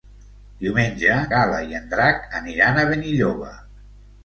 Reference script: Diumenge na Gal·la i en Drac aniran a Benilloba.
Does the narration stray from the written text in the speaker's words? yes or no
yes